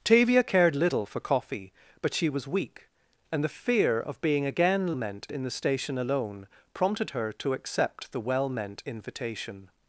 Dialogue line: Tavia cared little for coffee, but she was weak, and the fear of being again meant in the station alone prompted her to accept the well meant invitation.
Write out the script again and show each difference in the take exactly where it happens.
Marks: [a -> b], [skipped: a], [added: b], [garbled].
Tavia cared little for coffee, but she was weak, and the fear of being again meant in the station alone prompted her to accept the well meant invitation.